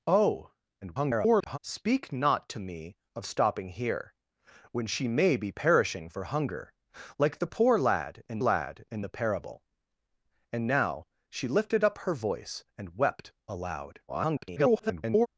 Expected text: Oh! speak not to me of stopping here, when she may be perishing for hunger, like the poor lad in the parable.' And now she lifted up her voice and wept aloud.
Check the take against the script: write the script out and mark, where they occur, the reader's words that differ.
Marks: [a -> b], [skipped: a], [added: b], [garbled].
Oh! [garbled] speak not to me of stopping here, when she may be perishing for hunger, like the poor lad in [added: lad in] the parable.' And now she lifted up her voice and wept aloud. [garbled]